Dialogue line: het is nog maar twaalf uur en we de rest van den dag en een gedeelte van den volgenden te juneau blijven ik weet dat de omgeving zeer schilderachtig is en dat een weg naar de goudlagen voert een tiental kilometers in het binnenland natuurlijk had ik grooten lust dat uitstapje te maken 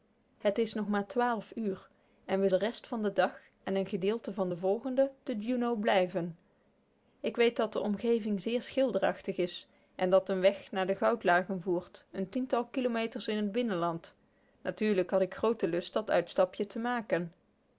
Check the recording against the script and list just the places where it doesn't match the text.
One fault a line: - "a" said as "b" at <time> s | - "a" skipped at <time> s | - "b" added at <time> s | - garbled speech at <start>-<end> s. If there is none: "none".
none